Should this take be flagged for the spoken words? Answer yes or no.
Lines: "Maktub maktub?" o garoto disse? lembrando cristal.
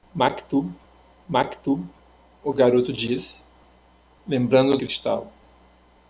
no